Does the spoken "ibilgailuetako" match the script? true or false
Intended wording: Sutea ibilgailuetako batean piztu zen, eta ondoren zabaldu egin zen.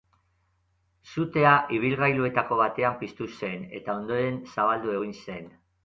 true